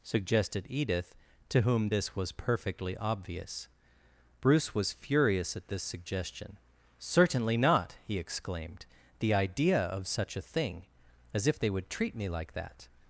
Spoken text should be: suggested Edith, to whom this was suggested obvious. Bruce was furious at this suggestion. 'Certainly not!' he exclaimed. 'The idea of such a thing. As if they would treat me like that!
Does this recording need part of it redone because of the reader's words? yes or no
yes